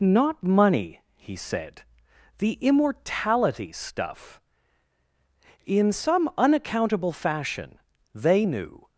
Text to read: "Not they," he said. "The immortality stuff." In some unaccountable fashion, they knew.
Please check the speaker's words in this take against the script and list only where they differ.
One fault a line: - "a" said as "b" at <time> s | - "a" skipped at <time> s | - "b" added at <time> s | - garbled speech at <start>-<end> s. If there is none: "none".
- "they" said as "money" at 0.4 s